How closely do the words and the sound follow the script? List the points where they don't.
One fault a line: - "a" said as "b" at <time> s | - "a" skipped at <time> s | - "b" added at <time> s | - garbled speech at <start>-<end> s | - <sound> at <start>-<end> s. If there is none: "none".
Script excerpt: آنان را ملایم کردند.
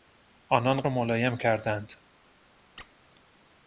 - squeak at 2.8-2.9 s